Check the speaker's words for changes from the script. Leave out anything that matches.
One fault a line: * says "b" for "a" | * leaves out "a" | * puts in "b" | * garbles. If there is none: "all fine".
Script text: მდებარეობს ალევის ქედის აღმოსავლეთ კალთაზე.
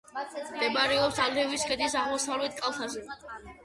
all fine